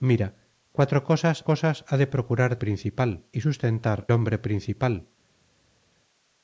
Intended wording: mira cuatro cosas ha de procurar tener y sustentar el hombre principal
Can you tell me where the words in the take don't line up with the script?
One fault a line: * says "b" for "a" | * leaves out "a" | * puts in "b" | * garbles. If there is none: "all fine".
* puts in "cosas"
* says "principal" for "tener"
* leaves out "el"